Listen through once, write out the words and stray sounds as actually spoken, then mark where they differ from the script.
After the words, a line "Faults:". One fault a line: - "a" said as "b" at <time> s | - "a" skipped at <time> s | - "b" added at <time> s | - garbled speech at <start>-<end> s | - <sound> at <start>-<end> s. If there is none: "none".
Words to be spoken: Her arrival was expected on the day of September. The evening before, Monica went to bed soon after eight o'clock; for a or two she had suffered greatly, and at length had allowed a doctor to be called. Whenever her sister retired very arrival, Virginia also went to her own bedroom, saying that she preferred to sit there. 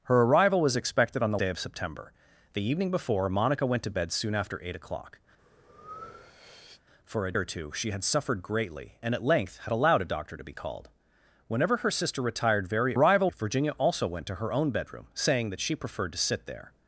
Her arrival was expected on the day of September. The evening before, Monica went to bed soon after eight o'clock; for a or two she had suffered greatly, and at length had allowed a doctor to be called. Whenever her sister retired very arrival, Virginia also went to her own bedroom, saying that she preferred to sit there.
Faults:
- breath at 5.4-6.8 s